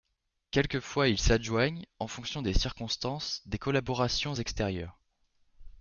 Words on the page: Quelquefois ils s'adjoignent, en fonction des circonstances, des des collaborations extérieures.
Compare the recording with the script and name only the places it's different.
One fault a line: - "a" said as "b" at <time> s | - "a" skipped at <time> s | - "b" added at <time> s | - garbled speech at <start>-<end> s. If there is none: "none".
- "des" skipped at 3.6 s